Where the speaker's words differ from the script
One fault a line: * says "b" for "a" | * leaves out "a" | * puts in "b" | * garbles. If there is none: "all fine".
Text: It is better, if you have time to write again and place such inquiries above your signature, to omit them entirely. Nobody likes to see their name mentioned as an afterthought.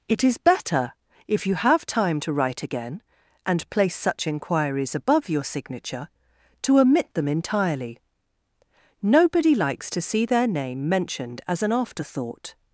all fine